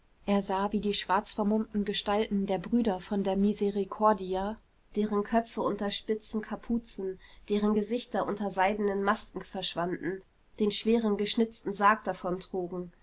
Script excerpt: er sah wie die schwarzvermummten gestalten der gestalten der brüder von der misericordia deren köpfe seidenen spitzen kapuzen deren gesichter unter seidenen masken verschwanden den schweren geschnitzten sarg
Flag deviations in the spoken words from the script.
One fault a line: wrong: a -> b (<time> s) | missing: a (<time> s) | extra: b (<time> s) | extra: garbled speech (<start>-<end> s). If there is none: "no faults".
missing: gestalten der (2.6 s)
wrong: seidenen -> unter (5.6 s)